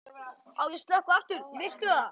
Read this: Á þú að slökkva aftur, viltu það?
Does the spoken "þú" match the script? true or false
false